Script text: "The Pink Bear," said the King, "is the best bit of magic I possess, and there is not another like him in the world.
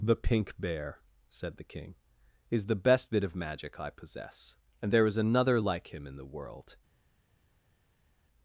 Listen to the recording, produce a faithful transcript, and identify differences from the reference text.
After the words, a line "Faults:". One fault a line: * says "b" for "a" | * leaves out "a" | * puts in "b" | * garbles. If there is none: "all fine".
"The Pink Bear," said the King, "is the best bit of magic I possess, and there is another like him in the world.
Faults:
* leaves out "not"